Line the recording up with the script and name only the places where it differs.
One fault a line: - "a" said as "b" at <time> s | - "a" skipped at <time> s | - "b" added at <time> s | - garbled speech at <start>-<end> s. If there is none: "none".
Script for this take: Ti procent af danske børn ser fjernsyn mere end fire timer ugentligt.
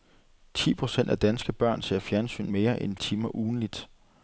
- "fire" skipped at 3.0 s